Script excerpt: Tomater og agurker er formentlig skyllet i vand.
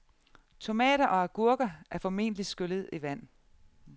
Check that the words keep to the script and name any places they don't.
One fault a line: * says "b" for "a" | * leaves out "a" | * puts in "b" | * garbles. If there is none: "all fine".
all fine